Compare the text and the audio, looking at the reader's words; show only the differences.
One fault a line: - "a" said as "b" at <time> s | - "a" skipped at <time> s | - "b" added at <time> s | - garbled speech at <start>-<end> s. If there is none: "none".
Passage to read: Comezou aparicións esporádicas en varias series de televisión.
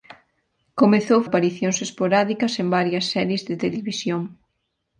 none